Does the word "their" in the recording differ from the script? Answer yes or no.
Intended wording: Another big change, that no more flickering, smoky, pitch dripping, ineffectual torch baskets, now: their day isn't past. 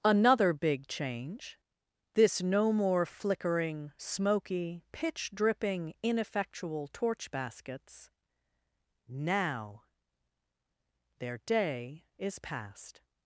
no